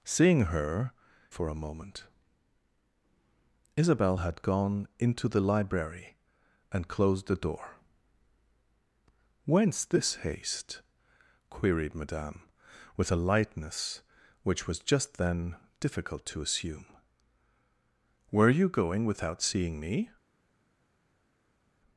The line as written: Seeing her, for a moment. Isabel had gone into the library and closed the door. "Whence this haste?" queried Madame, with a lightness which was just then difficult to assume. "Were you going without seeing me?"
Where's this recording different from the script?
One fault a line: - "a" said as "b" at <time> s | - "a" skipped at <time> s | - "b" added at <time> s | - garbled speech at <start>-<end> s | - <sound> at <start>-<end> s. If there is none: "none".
none